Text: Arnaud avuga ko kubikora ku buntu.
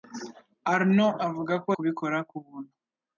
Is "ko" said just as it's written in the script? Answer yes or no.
yes